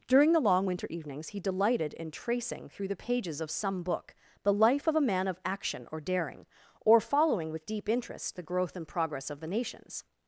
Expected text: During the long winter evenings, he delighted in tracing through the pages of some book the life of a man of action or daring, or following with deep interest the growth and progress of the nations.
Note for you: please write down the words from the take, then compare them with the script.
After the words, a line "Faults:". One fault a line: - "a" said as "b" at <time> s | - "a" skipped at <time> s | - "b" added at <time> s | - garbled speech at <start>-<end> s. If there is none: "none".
During the long winter evenings, he delighted in tracing through the pages of some book the life of a man of action or daring, or following with deep interest the growth and progress of the nations.
Faults:
none